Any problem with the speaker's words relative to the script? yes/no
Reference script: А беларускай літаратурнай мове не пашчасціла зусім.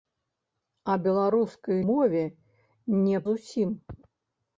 yes